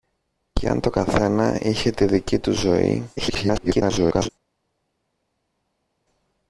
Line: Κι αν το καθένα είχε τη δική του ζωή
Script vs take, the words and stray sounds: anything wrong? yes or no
yes